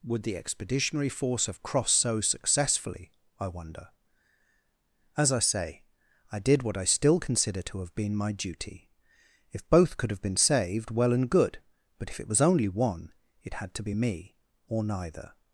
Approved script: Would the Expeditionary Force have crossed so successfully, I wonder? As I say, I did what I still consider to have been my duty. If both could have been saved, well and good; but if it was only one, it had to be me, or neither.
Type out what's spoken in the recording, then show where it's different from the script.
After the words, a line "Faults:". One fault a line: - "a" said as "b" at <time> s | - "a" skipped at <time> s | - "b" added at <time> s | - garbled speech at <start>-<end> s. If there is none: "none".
Would the Expeditionary Force have crossed so successfully, I wonder? As I say, I did what I still consider to have been my duty. If both could have been saved, well and good; but if it was only one, it had to be me, or neither.
Faults:
none